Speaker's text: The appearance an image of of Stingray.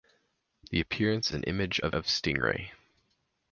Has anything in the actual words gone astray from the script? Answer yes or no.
no